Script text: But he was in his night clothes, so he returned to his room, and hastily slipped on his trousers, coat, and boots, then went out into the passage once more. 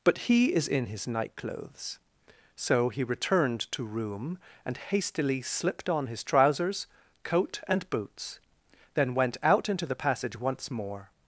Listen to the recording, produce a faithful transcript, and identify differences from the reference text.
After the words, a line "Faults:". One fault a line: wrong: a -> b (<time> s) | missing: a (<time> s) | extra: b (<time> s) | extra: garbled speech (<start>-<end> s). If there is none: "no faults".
But he is in his night clothes, so he returned to room, and hastily slipped on his trousers, coat, and boots, then went out into the passage once more.
Faults:
wrong: was -> is (0.5 s)
missing: his (3.8 s)